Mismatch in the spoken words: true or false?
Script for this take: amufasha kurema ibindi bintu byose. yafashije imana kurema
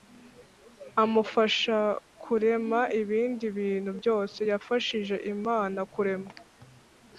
false